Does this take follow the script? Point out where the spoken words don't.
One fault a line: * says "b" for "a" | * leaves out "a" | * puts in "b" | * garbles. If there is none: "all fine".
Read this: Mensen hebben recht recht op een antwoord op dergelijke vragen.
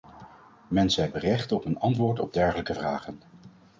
* leaves out "recht"